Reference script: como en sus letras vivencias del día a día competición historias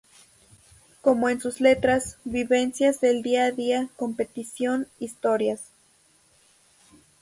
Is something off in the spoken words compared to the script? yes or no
no